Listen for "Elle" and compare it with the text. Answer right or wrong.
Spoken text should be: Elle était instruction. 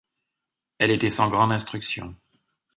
right